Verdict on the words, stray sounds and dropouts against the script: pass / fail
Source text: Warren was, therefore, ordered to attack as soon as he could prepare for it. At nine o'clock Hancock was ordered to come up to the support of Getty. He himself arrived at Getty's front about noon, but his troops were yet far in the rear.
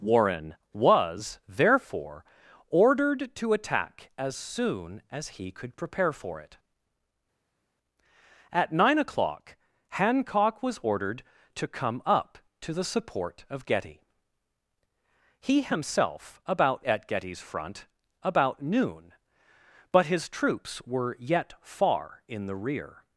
fail